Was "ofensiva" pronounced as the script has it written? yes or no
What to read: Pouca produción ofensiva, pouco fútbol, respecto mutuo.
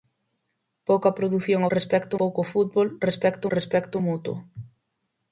no